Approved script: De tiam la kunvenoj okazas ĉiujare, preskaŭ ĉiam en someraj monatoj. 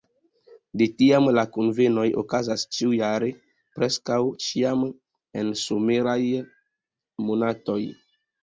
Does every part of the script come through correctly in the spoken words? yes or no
yes